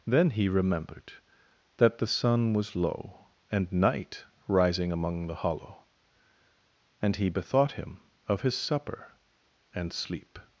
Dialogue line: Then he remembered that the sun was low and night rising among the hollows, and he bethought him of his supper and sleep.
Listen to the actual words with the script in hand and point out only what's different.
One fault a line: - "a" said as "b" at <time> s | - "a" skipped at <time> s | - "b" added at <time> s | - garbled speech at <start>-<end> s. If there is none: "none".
- "hollows" said as "hollow" at 5.3 s